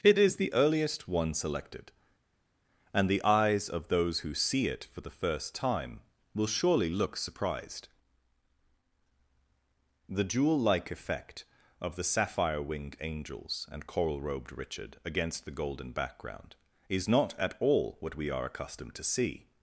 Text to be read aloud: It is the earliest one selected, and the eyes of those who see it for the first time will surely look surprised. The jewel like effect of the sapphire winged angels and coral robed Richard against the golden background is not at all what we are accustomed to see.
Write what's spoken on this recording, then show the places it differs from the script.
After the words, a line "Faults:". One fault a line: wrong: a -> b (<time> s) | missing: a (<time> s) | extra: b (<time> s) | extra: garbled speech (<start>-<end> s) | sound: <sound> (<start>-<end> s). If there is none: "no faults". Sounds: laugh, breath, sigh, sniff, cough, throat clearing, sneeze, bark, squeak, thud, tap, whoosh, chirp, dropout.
It is the earliest one selected, and the eyes of those who see it for the first time will surely look surprised. The jewel like effect of the sapphire winged angels and coral robed Richard against the golden background is not at all what we are accustomed to see.
Faults:
no faults